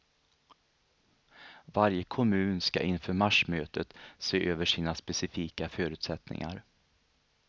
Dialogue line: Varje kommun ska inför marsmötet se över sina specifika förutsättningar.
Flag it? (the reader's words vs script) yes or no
no